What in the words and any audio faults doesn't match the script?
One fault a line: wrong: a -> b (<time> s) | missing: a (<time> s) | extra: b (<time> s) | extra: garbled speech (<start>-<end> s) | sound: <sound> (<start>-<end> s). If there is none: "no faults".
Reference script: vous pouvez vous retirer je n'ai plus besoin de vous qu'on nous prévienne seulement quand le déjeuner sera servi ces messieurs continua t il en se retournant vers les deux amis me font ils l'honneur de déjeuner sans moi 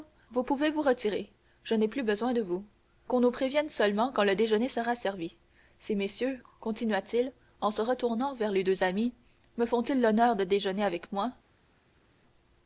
wrong: sans -> avec (10.8 s)